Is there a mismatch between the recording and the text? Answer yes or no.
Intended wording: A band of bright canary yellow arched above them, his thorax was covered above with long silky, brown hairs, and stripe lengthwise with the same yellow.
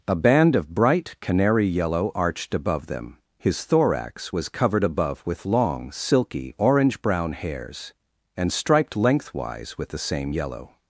yes